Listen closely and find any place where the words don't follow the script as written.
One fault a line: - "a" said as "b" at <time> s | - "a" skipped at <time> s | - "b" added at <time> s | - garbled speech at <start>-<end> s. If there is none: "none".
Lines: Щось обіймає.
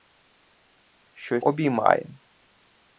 none